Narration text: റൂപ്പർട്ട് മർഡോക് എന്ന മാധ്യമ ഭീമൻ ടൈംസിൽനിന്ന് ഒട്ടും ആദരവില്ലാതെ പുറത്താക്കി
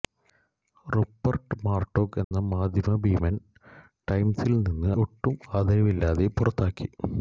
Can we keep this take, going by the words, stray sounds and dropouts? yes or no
no